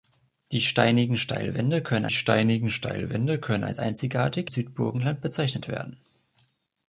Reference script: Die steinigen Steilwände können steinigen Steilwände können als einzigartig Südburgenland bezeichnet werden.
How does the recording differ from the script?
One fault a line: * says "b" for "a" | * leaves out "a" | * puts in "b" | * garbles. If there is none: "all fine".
all fine